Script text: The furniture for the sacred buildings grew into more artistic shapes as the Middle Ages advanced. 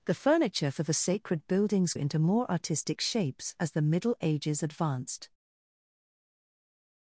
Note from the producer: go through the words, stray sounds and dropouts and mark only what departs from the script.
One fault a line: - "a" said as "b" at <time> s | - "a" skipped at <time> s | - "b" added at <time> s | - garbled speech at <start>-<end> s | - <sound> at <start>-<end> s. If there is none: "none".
- "grew" skipped at 1.9 s